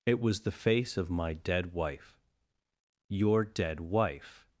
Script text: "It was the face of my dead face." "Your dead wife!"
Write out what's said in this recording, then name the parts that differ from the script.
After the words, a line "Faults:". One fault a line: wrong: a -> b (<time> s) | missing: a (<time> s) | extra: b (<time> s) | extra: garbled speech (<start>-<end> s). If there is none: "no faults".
"It was the face of my dead wife." "Your dead wife!"
Faults:
wrong: face -> wife (1.7 s)